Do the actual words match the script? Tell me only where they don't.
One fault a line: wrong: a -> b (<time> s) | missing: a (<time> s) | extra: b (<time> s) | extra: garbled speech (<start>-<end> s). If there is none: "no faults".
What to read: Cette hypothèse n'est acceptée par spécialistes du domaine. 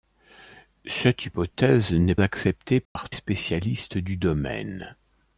no faults